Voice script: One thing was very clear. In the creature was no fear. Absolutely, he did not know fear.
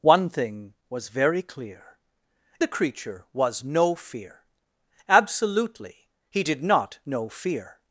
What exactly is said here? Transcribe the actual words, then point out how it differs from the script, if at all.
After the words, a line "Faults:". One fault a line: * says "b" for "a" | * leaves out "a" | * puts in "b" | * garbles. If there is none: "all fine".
One thing was very clear. The creature was no fear. Absolutely, he did not know fear.
Faults:
* leaves out "In"